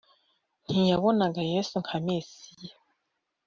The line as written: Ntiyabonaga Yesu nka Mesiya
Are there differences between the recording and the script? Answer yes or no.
no